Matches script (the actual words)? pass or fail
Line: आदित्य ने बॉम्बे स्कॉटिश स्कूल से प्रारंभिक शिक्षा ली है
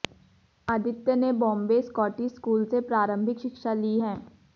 pass